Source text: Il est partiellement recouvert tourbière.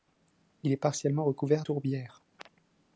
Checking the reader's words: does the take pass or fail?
pass